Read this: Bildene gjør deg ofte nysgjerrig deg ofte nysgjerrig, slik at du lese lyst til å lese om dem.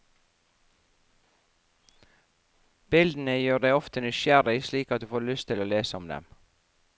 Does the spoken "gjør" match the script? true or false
true